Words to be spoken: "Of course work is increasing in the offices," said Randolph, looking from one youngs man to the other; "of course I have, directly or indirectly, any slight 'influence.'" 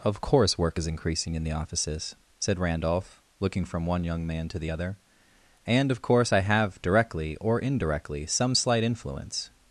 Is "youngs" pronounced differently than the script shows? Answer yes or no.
yes